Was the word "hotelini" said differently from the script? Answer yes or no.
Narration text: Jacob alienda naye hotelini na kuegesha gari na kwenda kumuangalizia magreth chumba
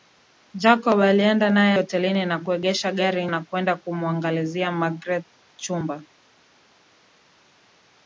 no